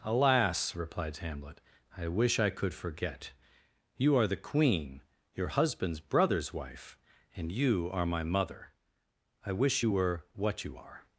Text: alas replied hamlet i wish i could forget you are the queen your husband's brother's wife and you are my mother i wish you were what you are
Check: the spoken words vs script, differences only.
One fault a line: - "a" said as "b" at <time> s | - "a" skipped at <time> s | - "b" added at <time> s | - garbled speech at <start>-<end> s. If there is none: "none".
none